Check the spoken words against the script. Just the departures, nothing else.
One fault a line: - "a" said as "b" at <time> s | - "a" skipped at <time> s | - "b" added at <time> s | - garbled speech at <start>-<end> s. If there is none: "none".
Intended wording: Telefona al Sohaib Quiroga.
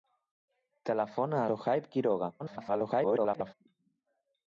- "al" skipped at 1.4 s
- garbled speech at 2.4-3.5 s